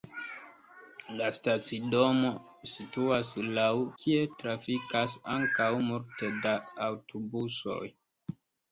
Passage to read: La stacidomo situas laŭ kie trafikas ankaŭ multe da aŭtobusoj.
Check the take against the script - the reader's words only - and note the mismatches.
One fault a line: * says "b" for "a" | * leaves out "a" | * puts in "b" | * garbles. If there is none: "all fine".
all fine